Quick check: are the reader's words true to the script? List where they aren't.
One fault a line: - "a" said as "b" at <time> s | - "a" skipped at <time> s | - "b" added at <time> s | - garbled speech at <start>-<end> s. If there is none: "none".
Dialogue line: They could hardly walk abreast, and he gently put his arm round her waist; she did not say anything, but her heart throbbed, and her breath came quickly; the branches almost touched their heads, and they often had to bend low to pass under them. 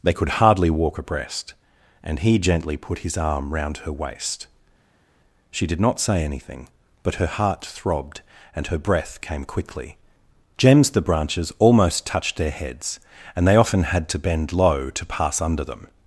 - "gems" added at 10.6 s